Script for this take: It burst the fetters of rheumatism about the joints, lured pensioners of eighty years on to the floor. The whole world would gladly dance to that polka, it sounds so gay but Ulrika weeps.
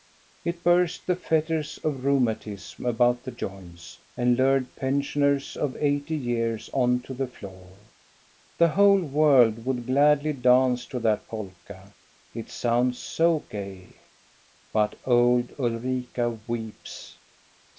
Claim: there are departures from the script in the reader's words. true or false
true